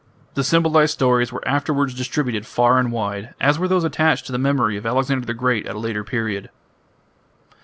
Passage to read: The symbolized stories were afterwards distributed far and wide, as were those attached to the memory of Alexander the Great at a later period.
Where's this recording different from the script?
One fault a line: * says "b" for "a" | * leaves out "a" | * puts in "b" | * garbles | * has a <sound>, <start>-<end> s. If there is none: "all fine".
all fine